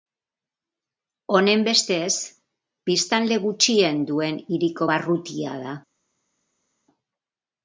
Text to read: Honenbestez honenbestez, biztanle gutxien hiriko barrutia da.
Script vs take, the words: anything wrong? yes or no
yes